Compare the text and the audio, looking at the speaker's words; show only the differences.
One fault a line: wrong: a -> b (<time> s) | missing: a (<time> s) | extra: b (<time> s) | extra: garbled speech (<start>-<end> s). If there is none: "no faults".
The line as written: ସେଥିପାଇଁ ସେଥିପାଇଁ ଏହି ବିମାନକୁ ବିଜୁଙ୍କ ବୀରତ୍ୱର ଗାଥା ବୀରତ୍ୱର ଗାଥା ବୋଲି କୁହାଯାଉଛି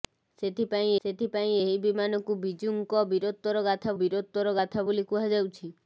no faults